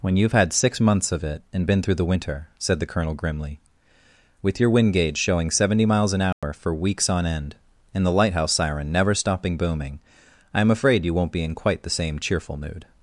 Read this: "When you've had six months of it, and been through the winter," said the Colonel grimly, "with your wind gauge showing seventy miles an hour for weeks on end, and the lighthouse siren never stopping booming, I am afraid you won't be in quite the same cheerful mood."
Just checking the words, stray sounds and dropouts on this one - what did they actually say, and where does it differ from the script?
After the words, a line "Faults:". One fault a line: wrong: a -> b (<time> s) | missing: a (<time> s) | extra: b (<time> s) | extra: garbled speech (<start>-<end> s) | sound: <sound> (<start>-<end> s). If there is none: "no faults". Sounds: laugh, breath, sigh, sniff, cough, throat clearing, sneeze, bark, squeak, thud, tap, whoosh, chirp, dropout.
"When you've had six months of it, and been through the winter," said the Colonel grimly, "with your wind gauge showing seventy miles an hour for weeks on end, and the lighthouse siren never stopping booming, I am afraid you won't be in quite the same cheerful mood."
Faults:
sound: dropout (6.3-6.4 s)